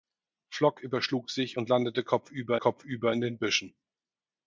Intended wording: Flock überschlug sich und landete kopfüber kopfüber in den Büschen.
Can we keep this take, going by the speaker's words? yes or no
yes